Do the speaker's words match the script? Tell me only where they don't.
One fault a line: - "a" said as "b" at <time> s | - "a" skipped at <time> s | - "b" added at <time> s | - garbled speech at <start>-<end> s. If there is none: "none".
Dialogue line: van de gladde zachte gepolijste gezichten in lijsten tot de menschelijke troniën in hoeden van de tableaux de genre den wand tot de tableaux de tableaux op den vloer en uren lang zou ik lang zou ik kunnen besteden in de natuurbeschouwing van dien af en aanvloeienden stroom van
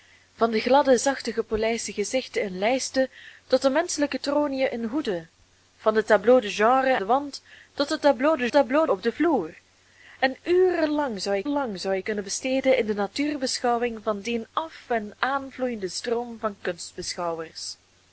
none